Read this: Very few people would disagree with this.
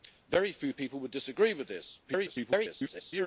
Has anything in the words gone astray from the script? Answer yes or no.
yes